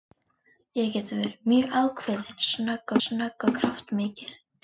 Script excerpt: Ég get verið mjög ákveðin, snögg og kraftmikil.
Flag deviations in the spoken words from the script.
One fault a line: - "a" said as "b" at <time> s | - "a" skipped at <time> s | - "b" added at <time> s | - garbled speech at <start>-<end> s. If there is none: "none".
- "snögg" added at 3.0 s